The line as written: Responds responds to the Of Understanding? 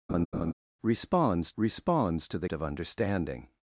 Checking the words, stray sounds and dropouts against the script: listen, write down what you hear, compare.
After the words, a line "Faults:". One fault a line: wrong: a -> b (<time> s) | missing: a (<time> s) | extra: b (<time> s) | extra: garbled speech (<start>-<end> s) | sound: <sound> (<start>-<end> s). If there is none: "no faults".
Responds responds to the Of Understanding?
Faults:
sound: laugh (0.1-0.5 s)